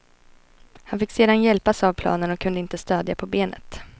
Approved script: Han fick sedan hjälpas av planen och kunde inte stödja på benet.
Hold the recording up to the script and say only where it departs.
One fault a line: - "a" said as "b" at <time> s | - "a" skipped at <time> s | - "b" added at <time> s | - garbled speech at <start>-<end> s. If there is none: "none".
none